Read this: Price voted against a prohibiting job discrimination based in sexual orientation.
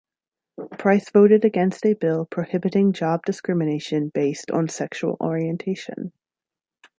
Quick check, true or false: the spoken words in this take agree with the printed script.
false